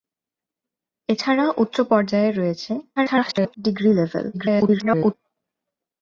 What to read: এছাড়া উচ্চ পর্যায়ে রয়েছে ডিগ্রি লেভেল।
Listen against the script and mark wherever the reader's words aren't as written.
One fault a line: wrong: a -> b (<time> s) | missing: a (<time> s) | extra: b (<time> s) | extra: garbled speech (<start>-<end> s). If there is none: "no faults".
extra: garbled speech (3.0-3.5 s)
extra: garbled speech (4.3-5.1 s)